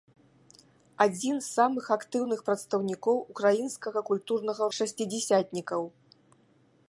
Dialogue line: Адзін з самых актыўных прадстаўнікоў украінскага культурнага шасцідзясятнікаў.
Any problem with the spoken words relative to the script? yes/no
no